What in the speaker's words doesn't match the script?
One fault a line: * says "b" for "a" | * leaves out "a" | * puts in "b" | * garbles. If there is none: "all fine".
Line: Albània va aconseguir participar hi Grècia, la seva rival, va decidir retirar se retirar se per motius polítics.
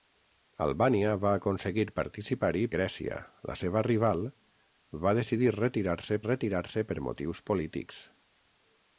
all fine